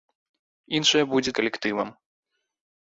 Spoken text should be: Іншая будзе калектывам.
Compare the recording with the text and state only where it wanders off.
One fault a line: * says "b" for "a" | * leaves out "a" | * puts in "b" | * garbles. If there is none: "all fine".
all fine